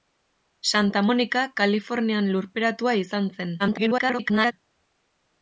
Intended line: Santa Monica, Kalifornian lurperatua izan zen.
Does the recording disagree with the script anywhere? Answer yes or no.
yes